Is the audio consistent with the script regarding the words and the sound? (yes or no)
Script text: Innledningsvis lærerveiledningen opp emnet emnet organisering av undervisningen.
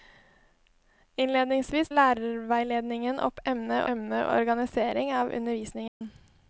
no